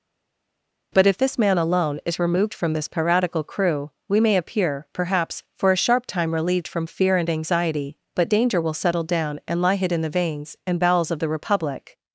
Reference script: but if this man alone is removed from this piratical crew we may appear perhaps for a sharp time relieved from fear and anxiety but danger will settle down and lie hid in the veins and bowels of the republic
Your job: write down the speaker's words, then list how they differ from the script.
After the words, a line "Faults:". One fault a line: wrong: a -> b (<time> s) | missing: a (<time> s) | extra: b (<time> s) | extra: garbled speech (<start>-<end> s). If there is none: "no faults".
but if this man alone is removed from this piratical crew we may appear perhaps for a sharp time relieved from fear and anxiety but danger will settle down and lie hid in the veins and bowels of the republic
Faults:
no faults